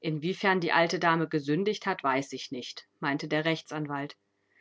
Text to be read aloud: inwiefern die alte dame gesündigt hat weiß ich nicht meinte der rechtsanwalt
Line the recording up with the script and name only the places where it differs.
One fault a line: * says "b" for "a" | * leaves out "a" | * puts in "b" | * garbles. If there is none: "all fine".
all fine